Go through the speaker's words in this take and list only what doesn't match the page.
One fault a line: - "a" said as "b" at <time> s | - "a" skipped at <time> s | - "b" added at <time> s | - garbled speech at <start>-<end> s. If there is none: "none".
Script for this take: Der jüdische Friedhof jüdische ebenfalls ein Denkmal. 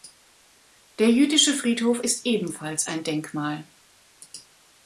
- "jüdische" said as "ist" at 2.0 s